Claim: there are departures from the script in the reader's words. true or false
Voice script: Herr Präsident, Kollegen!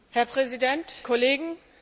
false